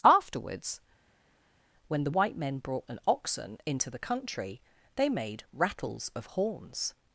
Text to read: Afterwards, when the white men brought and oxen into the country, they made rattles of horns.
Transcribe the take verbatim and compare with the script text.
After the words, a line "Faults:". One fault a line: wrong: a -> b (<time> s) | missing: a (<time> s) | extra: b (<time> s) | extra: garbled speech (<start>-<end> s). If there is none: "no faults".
Afterwards, when the white men brought and oxen into the country, they made rattles of horns.
Faults:
no faults